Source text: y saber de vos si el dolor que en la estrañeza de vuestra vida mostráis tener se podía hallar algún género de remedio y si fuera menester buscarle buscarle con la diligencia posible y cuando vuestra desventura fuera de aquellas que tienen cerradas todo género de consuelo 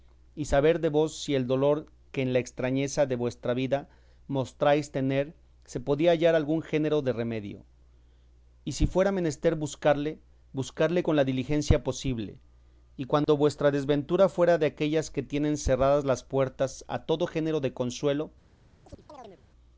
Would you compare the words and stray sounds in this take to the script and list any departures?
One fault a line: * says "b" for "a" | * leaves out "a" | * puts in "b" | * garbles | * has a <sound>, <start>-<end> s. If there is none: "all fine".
* has a dropout, 13.2-13.3 s
* puts in "las puertas a"
* has a chirp, 18.8-19.4 s